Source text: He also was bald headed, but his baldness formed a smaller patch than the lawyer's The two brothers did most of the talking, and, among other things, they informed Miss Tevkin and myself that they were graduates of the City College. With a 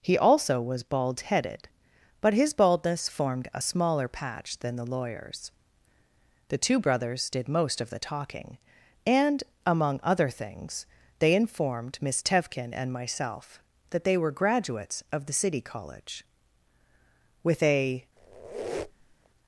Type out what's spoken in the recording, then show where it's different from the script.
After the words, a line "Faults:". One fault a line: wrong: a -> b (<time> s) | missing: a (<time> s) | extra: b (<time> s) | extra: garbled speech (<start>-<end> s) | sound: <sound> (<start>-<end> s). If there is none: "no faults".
He also was bald headed, but his baldness formed a smaller patch than the lawyer's The two brothers did most of the talking, and, among other things, they informed Miss Tevkin and myself that they were graduates of the City College. With a
Faults:
sound: squeak (18.2-19.3 s)